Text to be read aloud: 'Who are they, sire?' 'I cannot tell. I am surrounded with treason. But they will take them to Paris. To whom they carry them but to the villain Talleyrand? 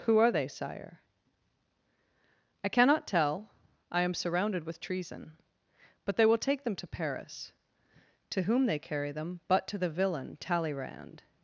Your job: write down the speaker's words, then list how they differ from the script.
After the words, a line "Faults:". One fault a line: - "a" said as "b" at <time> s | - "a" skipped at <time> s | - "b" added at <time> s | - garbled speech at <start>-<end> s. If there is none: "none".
'Who are they, sire?' 'I cannot tell. I am surrounded with treason. But they will take them to Paris. To whom they carry them but to the villain Talleyrand?
Faults:
none